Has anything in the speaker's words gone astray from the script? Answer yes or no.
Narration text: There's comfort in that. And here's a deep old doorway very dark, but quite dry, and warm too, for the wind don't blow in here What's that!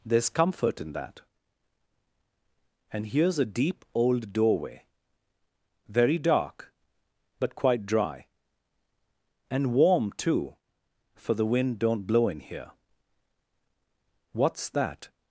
no